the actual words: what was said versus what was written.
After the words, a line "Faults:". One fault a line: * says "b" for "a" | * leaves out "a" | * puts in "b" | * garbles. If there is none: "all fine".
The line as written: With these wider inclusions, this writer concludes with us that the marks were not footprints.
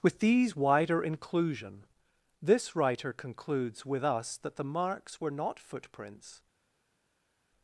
With these wider inclusion, this writer concludes with us that the marks were not footprints.
Faults:
* says "inclusion" for "inclusions"